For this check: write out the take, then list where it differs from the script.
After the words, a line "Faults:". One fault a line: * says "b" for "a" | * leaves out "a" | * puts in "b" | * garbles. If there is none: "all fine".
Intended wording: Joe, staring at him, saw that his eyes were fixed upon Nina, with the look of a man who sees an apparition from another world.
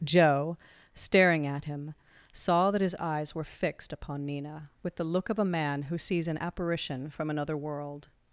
Joe, staring at him, saw that his eyes were fixed upon Nina, with the look of a man who sees an apparition from another world.
Faults:
all fine